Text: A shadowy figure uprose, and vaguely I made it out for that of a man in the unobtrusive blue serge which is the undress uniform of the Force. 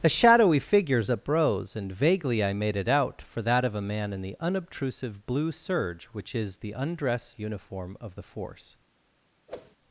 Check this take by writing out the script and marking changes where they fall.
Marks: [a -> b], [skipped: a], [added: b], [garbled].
A shadowy [figure -> figures] uprose, and vaguely I made it out for that of a man in the unobtrusive blue serge which is the undress uniform of the Force.